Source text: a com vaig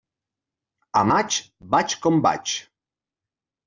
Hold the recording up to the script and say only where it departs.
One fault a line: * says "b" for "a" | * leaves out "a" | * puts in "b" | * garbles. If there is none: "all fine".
* puts in "maig vaig"